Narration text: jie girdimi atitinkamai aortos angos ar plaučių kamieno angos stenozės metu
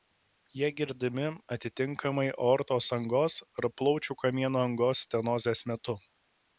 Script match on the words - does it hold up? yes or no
yes